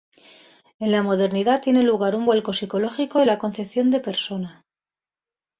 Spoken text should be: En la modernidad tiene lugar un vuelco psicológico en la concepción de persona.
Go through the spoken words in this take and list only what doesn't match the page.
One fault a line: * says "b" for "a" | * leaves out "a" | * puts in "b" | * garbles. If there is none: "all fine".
all fine